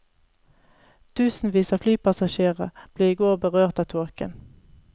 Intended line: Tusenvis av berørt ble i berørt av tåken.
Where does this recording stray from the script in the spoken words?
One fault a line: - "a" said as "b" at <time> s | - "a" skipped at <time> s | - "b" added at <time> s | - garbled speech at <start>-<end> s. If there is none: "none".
- "berørt" said as "flypassasjerer" at 1.8 s
- "går" added at 3.2 s